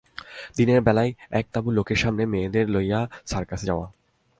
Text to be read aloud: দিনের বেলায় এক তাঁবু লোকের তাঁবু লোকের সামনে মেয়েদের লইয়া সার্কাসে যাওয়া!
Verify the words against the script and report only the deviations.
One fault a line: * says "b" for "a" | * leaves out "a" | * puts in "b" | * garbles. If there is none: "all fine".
* leaves out "তাঁবু লোকের"